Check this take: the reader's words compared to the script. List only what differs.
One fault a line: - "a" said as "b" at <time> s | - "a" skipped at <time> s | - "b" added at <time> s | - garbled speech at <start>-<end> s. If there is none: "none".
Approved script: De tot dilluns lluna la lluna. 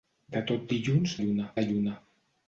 none